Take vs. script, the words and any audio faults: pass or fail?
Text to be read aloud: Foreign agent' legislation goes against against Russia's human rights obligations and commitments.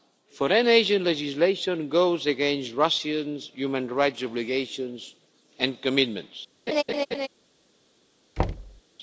fail